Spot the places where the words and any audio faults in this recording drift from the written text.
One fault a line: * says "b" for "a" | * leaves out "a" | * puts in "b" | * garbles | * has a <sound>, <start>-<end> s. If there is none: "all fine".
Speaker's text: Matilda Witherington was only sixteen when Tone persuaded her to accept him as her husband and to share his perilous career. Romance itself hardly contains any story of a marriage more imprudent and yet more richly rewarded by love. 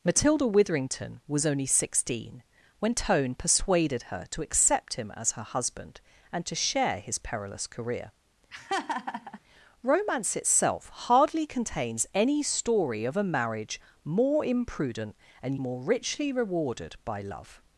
* has a laugh, 8.5-9.4 s
* leaves out "yet"